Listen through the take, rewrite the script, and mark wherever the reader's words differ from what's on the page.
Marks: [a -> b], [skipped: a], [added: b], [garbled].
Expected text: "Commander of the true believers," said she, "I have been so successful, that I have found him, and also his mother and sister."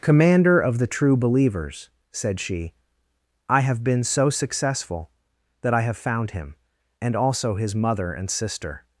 "Commander of the true believers," said she, "I have been so successful, that I have found him, and also his mother and sister."